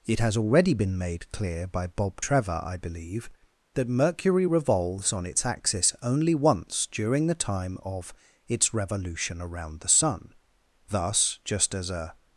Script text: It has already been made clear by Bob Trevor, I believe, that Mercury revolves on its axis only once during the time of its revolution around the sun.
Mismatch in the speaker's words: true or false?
true